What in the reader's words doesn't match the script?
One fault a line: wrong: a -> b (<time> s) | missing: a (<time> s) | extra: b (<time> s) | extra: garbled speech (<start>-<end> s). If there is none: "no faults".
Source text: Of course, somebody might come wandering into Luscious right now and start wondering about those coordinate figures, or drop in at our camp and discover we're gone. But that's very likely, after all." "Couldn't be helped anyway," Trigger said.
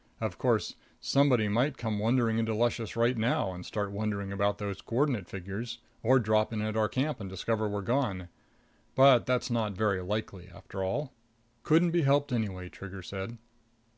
extra: not (9.5 s)